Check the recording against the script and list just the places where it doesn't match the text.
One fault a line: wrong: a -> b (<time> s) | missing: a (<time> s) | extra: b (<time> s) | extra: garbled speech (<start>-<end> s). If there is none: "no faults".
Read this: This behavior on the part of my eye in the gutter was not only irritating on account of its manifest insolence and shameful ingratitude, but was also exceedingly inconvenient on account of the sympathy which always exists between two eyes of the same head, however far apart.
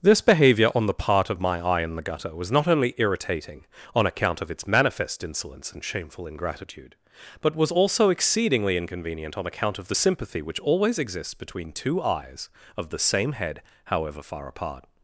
no faults